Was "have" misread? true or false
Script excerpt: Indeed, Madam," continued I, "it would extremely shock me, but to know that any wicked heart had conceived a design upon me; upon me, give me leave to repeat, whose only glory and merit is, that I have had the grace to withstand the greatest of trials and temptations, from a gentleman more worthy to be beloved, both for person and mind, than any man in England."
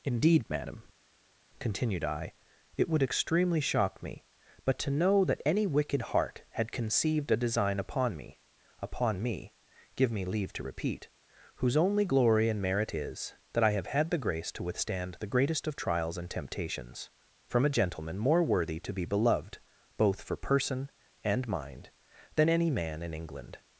false